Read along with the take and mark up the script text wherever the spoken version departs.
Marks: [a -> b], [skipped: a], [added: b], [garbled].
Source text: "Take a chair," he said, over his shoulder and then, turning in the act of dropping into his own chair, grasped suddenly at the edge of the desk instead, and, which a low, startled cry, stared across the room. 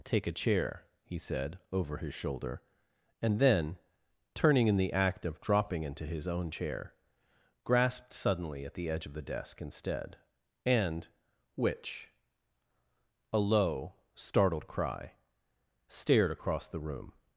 "Take a chair," he said, over his shoulder and then, turning in the act of dropping into his own chair, grasped suddenly at the edge of the desk instead, and, which a low, startled cry, stared across the room.